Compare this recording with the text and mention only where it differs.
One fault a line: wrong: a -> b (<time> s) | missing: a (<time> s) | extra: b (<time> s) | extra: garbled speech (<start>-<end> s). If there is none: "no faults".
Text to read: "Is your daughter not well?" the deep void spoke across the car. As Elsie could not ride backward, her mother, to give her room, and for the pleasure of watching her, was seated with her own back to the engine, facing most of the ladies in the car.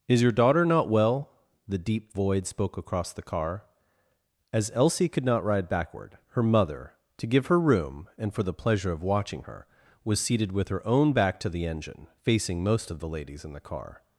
no faults